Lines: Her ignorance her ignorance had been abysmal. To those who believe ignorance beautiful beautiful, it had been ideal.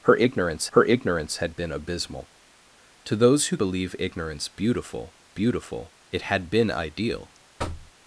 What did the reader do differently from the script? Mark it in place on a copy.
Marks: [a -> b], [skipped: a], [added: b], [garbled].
Her ignorance her ignorance had been abysmal. To those who believe ignorance beautiful beautiful, it had been ideal.